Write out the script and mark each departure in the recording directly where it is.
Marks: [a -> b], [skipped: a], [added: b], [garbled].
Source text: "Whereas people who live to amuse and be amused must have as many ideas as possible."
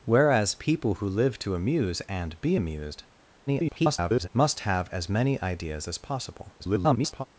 "Whereas people who live to amuse and be amused [garbled] must have as many ideas as possible." [garbled]